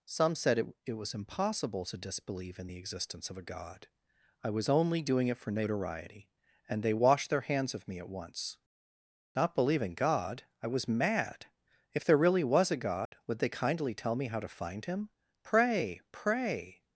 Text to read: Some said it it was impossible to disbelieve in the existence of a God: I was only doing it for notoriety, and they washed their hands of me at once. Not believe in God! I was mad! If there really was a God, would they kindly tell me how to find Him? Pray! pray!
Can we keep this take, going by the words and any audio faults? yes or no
no